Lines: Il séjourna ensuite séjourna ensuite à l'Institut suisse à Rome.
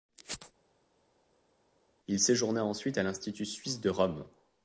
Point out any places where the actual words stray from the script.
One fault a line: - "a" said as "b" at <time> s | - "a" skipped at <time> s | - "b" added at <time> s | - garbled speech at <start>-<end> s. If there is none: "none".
- "séjourna ensuite" skipped at 3.0 s
- "à" said as "de" at 3.8 s